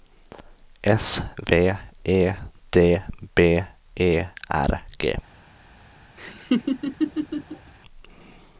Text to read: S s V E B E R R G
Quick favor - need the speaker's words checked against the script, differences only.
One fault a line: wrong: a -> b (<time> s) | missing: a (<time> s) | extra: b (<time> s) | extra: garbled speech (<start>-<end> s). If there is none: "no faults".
missing: s (1.2 s)
extra: D (2.7 s)
missing: R (4.8 s)